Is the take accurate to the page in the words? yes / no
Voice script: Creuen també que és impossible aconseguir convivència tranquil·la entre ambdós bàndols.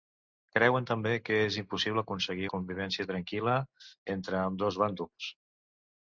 yes